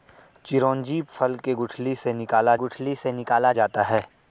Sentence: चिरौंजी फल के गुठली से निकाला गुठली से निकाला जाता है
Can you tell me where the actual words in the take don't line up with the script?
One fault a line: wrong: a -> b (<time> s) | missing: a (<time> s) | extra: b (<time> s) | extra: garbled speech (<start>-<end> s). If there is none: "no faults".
no faults